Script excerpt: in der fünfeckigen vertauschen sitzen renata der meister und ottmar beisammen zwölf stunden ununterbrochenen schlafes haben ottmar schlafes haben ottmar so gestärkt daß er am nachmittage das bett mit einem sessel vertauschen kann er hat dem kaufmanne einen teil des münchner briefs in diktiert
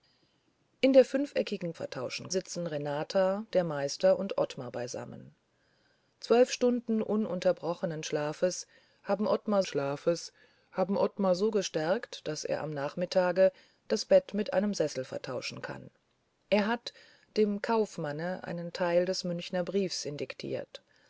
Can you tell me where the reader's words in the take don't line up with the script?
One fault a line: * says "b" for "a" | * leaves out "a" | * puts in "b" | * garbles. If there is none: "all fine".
all fine